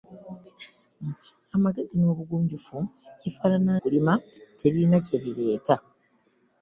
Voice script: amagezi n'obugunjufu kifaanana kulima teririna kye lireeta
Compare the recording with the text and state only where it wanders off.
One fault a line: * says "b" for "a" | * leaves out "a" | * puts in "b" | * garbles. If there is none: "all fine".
all fine